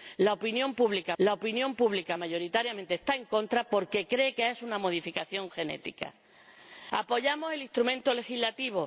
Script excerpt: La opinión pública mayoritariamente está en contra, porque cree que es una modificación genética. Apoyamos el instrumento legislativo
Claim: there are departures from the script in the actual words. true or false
true